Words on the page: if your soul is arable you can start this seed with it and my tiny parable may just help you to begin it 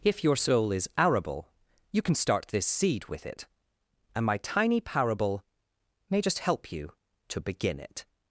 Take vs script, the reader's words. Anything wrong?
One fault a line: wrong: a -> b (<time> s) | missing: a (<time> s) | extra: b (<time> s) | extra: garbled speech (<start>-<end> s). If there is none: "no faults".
no faults